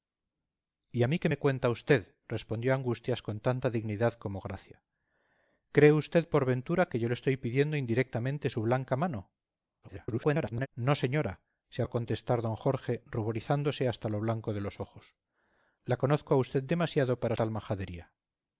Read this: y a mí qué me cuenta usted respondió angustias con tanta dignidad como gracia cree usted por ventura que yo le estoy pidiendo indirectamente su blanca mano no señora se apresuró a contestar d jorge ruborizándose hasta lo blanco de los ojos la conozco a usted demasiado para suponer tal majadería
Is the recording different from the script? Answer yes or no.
yes